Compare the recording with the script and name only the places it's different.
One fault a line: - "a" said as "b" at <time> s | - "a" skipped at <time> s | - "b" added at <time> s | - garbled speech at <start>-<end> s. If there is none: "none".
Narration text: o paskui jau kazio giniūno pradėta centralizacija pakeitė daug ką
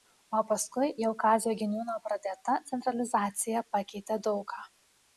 none